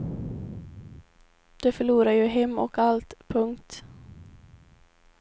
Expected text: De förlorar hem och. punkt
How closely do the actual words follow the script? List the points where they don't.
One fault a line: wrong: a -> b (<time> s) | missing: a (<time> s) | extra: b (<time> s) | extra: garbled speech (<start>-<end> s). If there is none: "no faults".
extra: ju (2.1 s)
extra: allt (2.8 s)